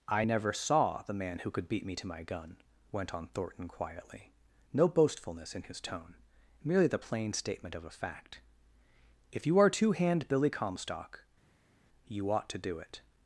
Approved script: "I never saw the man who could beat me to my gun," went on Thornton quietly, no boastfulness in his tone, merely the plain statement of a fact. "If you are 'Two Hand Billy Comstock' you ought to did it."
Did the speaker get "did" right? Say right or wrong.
wrong